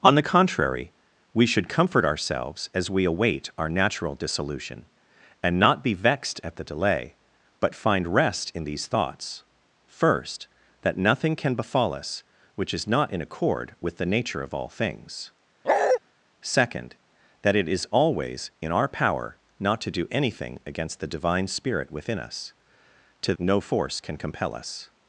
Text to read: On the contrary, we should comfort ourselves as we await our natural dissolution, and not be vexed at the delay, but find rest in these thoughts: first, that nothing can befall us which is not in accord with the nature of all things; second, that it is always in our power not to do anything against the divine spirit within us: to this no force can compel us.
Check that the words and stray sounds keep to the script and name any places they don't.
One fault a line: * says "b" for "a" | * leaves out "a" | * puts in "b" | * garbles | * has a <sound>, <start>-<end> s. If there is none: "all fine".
* has a bark, 15.6-16.0 s
* leaves out "this"